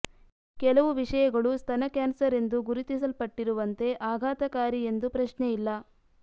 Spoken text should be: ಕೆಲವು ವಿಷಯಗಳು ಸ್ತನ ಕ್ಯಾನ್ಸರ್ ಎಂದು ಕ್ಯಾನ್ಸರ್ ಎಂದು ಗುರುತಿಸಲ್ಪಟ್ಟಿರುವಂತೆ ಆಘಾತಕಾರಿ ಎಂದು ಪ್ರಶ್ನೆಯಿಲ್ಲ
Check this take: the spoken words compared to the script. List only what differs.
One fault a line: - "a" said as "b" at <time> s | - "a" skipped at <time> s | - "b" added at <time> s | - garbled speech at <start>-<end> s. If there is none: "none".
- "ಕ್ಯಾನ್ಸರ್ ಎಂದು" skipped at 2.6 s